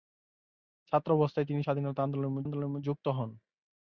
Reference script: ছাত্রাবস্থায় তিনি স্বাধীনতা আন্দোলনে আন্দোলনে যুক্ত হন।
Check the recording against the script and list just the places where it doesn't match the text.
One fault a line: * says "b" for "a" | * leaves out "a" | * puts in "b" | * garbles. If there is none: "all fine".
all fine